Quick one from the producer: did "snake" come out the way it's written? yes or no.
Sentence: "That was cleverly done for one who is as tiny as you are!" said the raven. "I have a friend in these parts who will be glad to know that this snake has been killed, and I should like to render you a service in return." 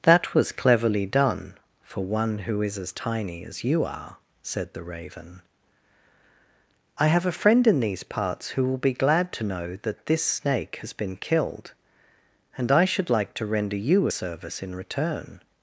yes